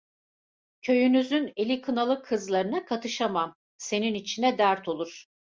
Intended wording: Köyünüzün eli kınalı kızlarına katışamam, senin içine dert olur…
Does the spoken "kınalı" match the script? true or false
true